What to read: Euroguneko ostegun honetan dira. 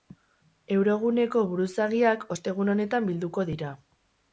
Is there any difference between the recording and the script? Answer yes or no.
yes